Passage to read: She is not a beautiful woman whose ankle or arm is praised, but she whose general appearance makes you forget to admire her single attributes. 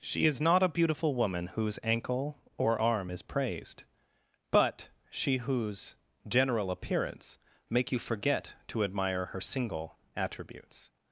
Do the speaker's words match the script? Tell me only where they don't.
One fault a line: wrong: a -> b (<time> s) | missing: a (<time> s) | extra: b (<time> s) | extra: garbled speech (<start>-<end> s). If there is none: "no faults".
wrong: makes -> make (7.7 s)